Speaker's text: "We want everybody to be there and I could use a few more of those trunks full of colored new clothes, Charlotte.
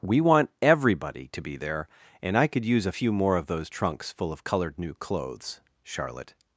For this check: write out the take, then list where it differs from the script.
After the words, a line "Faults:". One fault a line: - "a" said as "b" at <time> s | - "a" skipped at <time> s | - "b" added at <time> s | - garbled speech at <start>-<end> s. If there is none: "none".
"We want everybody to be there and I could use a few more of those trunks full of colored new clothes, Charlotte.
Faults:
none